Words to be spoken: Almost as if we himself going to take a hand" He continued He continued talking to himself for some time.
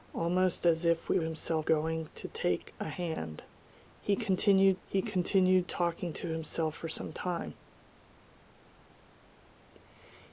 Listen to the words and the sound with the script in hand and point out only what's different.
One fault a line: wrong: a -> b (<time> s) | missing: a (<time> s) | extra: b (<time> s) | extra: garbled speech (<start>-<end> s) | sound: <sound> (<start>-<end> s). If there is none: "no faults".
no faults